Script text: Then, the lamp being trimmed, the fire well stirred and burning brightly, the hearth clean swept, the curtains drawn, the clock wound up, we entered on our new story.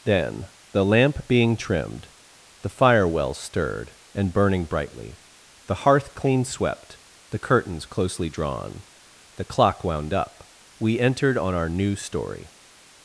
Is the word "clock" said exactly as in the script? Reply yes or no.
yes